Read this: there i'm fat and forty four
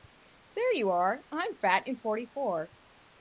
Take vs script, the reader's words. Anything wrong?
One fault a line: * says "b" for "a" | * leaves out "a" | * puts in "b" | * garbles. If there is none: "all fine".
* puts in "you are"